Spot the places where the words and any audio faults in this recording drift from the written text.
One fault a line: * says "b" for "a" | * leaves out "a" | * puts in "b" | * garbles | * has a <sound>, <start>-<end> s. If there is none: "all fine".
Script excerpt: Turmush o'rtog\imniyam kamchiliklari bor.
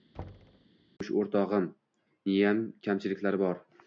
* has a thud, 0.1-0.7 s